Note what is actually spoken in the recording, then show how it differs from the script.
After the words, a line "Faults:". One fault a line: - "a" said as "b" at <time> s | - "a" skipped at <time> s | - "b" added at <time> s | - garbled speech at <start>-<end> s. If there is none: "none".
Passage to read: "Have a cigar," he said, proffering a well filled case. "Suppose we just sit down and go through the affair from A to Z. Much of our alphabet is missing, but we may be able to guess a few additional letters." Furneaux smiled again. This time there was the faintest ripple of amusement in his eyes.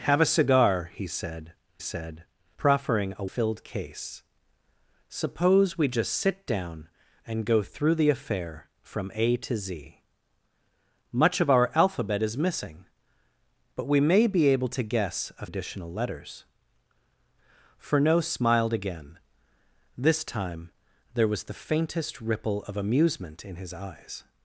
"Have a cigar," he said said, proffering a filled case. "Suppose we just sit down and go through the affair from A to Z. Much of our alphabet is missing, but we may be able to guess a additional letters." Furneaux smiled again. This time there was the faintest ripple of amusement in his eyes.
Faults:
- "said" added at 1.8 s
- "well" skipped at 3.2 s
- "few" skipped at 15.5 s